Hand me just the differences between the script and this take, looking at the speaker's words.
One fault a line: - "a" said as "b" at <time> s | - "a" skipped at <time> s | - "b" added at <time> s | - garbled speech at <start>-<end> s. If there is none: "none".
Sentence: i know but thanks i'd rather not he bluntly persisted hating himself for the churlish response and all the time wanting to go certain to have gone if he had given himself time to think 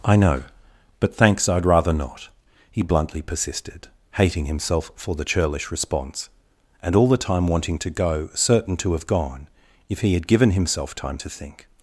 none